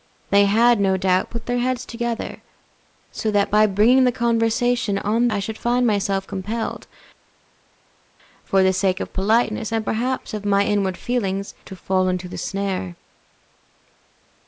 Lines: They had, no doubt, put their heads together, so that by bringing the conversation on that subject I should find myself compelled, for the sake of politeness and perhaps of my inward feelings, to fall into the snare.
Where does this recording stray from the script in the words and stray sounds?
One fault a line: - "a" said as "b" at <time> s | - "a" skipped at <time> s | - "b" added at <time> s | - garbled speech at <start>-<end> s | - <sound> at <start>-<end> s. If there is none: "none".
- "that subject" skipped at 5.3 s